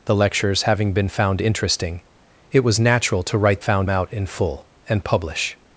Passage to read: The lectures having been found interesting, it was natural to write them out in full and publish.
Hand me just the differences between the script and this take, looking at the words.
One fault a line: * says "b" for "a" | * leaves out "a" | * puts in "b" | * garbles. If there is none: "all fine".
* says "found" for "them"